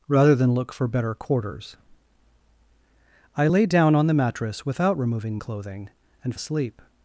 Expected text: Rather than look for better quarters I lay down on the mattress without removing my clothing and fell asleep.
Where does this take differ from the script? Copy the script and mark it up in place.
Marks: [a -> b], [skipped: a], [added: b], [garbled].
Rather than look for better quarters I lay down on the mattress without removing [skipped: my] clothing and [skipped: fell] asleep.